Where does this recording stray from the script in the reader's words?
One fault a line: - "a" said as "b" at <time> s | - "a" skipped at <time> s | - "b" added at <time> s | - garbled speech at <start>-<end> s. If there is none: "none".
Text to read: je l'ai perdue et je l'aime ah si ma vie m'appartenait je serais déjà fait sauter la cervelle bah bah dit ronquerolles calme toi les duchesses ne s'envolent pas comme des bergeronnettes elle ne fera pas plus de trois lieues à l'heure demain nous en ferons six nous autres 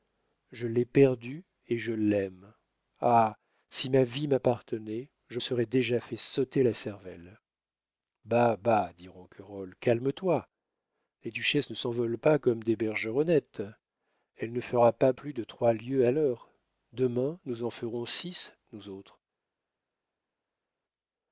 none